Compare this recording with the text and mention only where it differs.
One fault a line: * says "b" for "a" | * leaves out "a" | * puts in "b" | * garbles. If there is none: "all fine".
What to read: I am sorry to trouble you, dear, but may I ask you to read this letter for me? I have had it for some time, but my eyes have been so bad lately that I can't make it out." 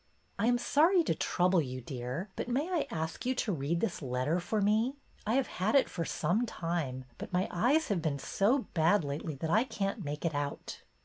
all fine